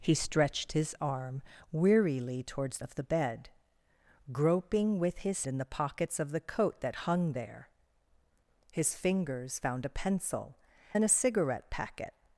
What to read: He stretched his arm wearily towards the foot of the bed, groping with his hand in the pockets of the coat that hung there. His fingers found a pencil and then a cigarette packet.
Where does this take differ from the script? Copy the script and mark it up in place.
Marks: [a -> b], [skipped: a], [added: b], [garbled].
He stretched his arm wearily towards [skipped: the foot] of the bed, groping with his [skipped: hand] in the pockets of the coat that hung there. His fingers found a pencil [skipped: and] then a cigarette packet.